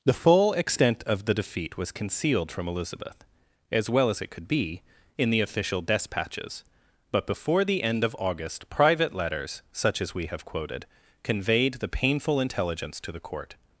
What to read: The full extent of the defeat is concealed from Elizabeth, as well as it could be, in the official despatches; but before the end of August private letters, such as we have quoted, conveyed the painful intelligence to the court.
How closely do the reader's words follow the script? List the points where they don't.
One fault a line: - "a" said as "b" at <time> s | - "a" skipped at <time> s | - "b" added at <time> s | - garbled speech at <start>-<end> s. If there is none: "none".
- "is" said as "was" at 1.8 s